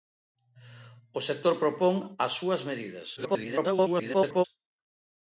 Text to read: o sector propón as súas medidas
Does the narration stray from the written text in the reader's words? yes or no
yes